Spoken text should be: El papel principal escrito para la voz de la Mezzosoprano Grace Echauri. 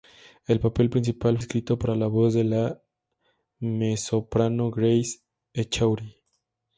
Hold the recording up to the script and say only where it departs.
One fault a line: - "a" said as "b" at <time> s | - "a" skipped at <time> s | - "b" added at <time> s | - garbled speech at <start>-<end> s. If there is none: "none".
none